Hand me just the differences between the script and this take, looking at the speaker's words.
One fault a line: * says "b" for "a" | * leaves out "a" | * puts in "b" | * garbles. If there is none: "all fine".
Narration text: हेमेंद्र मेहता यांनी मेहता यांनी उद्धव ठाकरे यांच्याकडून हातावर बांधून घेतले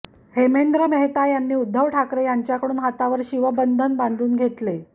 * leaves out "मेहता यांनी"
* puts in "शिवबंधन"